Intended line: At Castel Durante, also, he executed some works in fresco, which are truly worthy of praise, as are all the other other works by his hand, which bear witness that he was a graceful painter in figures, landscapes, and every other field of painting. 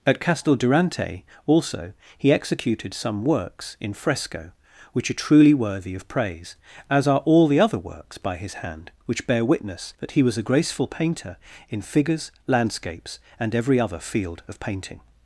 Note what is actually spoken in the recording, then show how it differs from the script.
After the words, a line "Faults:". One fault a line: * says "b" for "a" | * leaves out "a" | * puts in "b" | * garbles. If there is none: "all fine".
At Castel Durante, also, he executed some works in fresco, which are truly worthy of praise, as are all the other works by his hand, which bear witness that he was a graceful painter in figures, landscapes, and every other field of painting.
Faults:
* leaves out "other"